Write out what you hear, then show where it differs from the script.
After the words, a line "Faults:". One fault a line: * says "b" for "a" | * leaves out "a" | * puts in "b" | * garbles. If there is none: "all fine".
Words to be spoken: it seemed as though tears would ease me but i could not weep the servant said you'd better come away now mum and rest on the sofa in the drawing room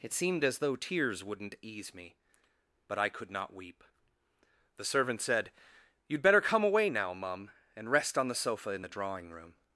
it seemed as though tears wouldn't ease me but i could not weep the servant said you'd better come away now mum and rest on the sofa in the drawing room
Faults:
* says "wouldn't" for "would"